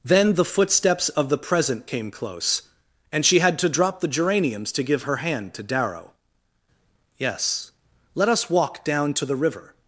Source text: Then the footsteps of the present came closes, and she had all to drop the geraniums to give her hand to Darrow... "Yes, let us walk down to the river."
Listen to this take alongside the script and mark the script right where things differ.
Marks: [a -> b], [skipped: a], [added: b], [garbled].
Then the footsteps of the present came [closes, -> close] and she had [skipped: all] to drop the geraniums to give her hand to Darrow... "Yes, let us walk down to the river."